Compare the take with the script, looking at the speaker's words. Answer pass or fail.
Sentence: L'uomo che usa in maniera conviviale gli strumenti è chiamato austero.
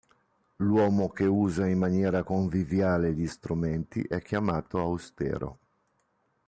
pass